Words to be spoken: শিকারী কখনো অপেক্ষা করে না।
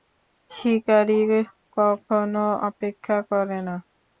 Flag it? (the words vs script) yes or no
no